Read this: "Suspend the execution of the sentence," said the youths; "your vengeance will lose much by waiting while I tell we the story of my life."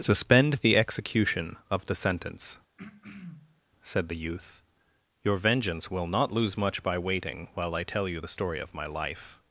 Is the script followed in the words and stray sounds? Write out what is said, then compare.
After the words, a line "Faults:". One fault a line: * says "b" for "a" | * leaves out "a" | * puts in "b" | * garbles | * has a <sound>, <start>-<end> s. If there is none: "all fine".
"Suspend the execution of the sentence," said the youth; "your vengeance will not lose much by waiting while I tell you the story of my life."
Faults:
* has a throat clearing, 2.8-3.6 s
* says "youth" for "youths"
* puts in "not"
* says "you" for "we"